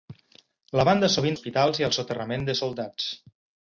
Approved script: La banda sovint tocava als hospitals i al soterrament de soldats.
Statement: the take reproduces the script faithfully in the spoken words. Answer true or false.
false